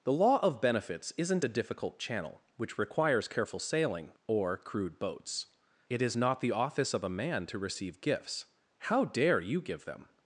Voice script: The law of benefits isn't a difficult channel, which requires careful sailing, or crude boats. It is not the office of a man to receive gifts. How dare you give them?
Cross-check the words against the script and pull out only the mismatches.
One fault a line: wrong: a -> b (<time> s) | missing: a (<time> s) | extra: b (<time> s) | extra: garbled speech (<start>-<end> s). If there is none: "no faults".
no faults